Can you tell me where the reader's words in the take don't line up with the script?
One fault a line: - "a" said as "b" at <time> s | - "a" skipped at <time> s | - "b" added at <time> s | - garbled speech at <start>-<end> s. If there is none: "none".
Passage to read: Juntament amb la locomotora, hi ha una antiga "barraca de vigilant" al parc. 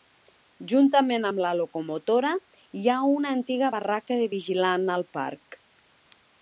none